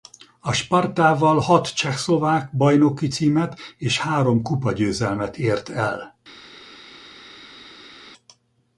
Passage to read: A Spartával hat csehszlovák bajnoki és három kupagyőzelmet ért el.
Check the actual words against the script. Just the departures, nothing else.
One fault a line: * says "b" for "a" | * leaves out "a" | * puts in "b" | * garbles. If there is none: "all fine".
* puts in "címet"